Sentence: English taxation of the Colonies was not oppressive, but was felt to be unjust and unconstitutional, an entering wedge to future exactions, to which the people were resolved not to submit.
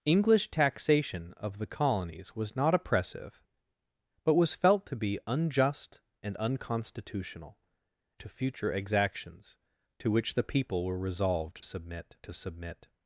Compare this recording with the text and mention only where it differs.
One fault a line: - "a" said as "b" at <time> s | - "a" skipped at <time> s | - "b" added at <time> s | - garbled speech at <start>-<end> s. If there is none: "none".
- "an entering wedge" skipped at 7.6 s
- "not" said as "submit" at 11.6 s